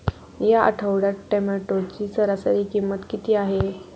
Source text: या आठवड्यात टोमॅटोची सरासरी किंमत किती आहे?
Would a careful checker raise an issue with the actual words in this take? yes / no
no